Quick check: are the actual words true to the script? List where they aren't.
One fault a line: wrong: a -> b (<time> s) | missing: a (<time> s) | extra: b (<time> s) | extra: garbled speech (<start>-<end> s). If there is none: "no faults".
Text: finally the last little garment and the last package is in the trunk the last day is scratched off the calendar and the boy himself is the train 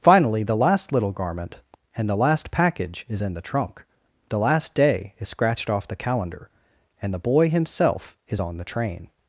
extra: on (8.4 s)